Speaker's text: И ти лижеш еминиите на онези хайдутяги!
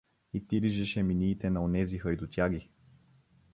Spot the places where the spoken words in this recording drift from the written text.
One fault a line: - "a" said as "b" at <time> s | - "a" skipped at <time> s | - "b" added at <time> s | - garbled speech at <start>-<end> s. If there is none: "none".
none